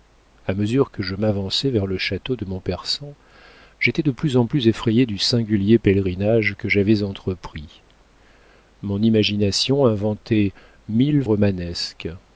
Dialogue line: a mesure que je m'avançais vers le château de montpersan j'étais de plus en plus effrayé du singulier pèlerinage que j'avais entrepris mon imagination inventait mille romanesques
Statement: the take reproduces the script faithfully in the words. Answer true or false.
true